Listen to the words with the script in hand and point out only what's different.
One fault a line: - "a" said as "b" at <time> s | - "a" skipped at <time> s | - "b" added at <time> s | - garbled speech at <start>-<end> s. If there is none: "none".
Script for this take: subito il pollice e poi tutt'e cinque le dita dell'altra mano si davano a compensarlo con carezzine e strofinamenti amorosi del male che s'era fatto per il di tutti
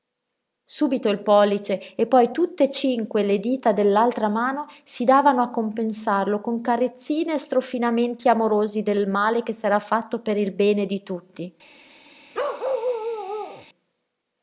- "bene" added at 10.5 s